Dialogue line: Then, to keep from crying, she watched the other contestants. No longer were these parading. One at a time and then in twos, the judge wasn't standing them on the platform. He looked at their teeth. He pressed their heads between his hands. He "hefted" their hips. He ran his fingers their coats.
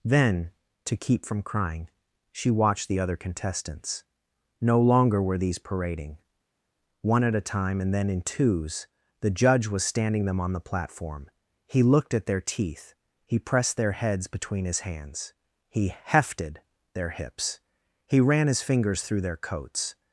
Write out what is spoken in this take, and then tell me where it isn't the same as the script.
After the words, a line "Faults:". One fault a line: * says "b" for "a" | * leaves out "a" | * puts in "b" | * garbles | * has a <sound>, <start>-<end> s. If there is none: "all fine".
Then, to keep from crying, she watched the other contestants. No longer were these parading. One at a time and then in twos, the judge was standing them on the platform. He looked at their teeth. He pressed their heads between his hands. He "hefted" their hips. He ran his fingers through their coats.
Faults:
* says "was" for "wasn't"
* puts in "through"